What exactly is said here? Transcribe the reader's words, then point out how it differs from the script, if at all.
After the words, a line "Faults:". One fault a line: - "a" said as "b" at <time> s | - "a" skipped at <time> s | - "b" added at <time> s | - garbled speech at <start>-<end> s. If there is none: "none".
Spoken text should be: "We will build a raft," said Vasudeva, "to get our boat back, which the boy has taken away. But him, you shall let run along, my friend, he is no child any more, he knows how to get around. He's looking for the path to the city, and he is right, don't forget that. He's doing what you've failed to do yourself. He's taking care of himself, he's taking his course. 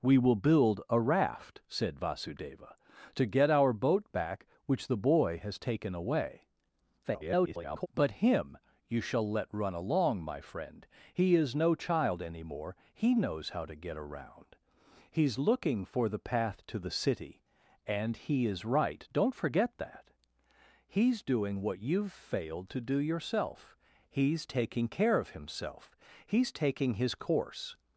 "We will build a raft," said Vasudeva, "to get our boat back, which the boy has taken away. [garbled] But him, you shall let run along, my friend, he is no child any more, he knows how to get around. He's looking for the path to the city, and he is right, don't forget that. He's doing what you've failed to do yourself. He's taking care of himself, he's taking his course.
Faults:
- garbled speech at 7.0-7.9 s